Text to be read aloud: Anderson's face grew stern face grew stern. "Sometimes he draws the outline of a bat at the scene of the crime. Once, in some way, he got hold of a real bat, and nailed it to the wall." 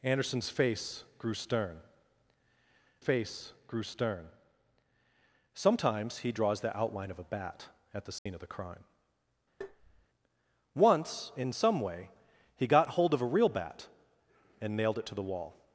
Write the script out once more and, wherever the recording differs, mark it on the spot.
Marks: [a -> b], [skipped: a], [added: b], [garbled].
Anderson's face grew stern face grew stern. "Sometimes he draws the outline of a bat at the scene of the crime. Once, in some way, he got hold of a real bat, and nailed it to the wall."